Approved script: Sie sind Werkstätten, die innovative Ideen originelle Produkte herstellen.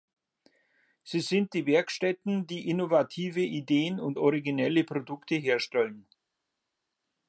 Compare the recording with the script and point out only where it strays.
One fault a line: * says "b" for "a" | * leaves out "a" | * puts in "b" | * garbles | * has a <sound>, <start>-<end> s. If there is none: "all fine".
* puts in "die"
* puts in "und"